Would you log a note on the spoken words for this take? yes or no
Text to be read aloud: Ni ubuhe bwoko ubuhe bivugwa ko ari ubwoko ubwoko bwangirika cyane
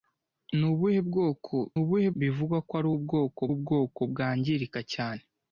no